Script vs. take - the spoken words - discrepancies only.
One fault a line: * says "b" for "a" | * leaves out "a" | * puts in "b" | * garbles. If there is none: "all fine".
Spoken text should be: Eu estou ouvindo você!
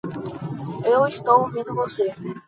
all fine